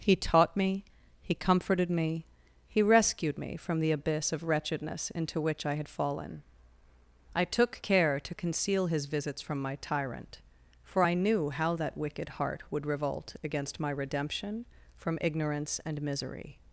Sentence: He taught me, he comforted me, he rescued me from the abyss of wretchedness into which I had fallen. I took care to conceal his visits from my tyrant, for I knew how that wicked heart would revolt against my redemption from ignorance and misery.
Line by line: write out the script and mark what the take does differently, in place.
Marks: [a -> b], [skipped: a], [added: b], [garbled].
He taught me, he comforted me, he rescued me from the abyss of wretchedness into which I had fallen. I took care to conceal his visits from my tyrant, for I knew how that wicked heart would revolt against my redemption from ignorance and misery.